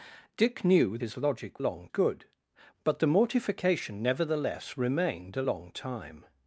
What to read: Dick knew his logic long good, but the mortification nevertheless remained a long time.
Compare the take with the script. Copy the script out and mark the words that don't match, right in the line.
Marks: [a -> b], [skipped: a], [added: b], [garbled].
Dick knew his logic long good, but the mortification nevertheless remained a long time.